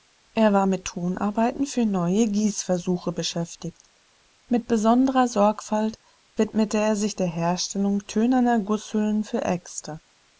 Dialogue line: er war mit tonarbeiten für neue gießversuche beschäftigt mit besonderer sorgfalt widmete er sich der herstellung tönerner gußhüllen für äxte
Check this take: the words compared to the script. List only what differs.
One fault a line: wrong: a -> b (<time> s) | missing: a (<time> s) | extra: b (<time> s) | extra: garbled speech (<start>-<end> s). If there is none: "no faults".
no faults